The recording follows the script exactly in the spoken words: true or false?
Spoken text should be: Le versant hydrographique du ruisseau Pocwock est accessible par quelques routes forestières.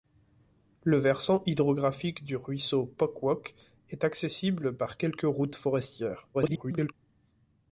false